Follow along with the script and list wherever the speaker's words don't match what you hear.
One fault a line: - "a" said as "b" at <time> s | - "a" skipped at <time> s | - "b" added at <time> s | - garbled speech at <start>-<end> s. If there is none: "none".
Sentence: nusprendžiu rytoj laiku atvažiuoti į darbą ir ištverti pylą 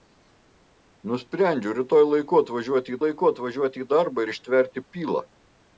- "laiku atvažiuoti" added at 3.0 s